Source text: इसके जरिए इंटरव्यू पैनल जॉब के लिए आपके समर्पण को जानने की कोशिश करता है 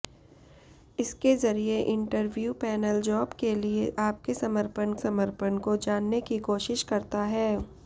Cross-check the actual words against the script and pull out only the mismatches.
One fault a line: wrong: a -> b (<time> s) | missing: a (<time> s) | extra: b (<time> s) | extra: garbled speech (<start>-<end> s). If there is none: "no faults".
extra: समर्पण (4.9 s)